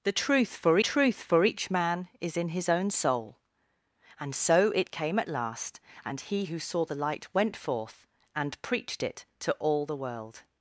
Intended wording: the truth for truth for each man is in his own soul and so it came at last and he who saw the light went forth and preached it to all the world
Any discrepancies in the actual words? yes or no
no